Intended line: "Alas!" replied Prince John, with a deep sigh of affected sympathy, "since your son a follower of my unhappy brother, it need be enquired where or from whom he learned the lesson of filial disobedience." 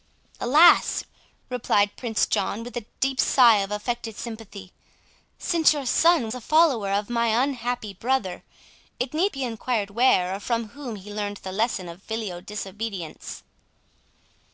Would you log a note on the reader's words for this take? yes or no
no